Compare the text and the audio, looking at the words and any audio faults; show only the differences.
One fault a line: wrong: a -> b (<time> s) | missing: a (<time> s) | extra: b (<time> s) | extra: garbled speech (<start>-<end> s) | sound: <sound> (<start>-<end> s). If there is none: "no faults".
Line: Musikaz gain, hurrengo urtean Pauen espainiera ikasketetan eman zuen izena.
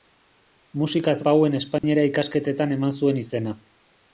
missing: gain hurrengo urtean (1.1 s)
sound: dropout (1.8-1.8 s)